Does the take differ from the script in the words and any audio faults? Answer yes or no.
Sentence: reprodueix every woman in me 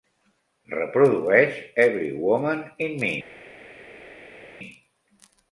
no